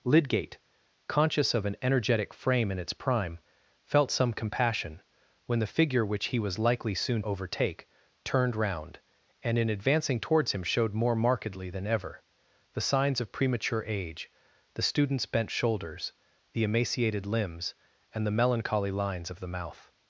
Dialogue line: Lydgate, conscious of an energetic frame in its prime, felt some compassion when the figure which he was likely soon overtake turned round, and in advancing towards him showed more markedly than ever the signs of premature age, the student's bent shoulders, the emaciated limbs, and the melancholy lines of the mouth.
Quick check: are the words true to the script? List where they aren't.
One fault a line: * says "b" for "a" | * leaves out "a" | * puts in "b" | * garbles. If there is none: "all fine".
all fine